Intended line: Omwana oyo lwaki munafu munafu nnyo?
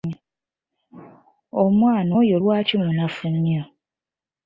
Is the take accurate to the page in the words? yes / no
no